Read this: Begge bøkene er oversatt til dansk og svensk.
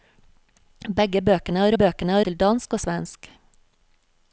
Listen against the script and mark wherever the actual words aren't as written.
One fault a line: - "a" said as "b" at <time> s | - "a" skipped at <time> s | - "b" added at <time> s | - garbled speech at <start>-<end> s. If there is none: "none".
- "oversatt" said as "bøkene" at 1.8 s